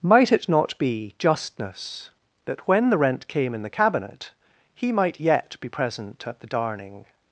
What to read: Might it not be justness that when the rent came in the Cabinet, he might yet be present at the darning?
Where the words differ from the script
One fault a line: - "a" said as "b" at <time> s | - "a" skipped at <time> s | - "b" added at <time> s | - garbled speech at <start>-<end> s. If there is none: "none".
none